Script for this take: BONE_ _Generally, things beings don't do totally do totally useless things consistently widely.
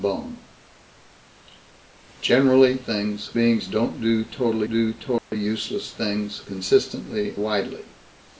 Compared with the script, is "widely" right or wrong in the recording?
right